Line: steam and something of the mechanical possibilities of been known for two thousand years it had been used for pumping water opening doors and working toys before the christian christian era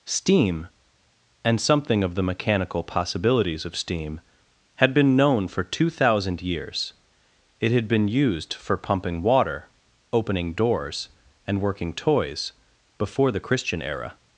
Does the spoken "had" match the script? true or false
true